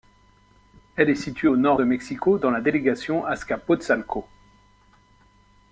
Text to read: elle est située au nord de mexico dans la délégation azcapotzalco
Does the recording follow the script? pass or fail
pass